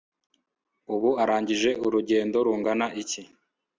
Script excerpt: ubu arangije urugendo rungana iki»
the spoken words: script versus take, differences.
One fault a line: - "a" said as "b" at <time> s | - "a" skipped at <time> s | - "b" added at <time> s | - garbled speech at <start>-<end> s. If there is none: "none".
none